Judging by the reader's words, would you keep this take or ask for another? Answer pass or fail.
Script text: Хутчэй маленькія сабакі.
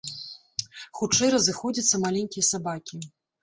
fail